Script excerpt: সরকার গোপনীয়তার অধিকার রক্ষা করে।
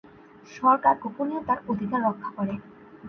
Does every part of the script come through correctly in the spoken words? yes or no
yes